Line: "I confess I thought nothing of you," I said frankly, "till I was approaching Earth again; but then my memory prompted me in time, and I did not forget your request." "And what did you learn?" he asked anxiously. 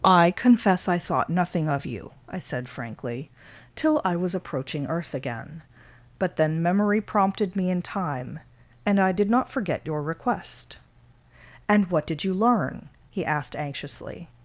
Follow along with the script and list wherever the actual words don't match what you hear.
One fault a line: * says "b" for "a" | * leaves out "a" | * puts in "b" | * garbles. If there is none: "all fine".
* leaves out "my"